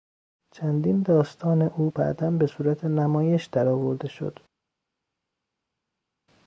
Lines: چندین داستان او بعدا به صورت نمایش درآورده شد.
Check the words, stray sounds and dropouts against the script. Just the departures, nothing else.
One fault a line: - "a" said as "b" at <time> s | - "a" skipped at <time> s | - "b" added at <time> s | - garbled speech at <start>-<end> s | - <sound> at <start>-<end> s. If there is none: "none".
none